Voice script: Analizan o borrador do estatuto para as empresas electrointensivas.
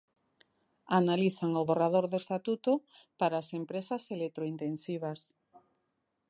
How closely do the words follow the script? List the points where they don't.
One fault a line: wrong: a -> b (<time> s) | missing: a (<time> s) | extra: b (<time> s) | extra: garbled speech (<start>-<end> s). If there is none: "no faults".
no faults